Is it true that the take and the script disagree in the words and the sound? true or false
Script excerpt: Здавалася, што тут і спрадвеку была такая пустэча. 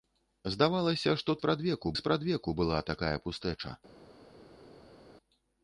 true